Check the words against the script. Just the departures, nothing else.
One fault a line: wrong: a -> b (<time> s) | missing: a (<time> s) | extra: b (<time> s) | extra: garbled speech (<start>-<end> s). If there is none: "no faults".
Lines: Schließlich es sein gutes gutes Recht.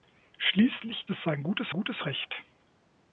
no faults